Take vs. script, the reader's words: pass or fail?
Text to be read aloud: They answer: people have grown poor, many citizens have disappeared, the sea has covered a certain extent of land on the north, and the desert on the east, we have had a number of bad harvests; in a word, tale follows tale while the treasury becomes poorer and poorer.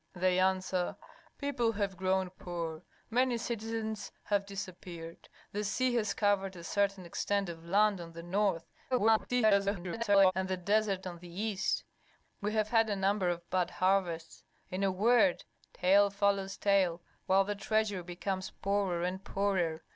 fail